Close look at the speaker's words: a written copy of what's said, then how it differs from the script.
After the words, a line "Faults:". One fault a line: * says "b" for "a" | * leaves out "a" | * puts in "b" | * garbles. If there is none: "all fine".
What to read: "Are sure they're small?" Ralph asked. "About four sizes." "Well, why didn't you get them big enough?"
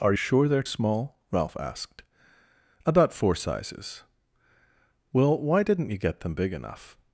"Are sure they're small?" Ralph asked. "About four sizes." "Well, why didn't you get them big enough?"
Faults:
all fine